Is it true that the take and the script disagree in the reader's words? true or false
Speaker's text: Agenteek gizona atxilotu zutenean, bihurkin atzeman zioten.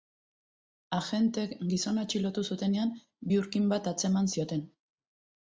true